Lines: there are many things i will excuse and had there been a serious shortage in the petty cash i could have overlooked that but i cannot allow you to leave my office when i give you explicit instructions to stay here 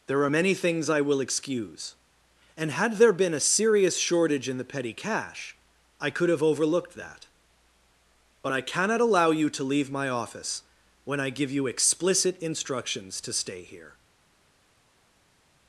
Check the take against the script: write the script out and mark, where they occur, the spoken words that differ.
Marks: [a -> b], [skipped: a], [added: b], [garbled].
there are many things i will excuse and had there been a serious shortage in the petty cash i could have overlooked that but i cannot allow you to leave my office when i give you explicit instructions to stay here